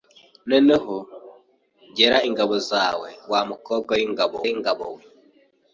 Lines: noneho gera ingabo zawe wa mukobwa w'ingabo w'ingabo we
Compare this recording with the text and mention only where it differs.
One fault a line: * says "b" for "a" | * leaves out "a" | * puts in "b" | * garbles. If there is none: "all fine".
all fine